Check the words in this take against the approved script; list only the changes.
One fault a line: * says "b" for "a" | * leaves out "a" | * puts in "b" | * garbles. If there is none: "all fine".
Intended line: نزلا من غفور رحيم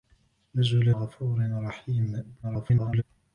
* leaves out "من"
* garbles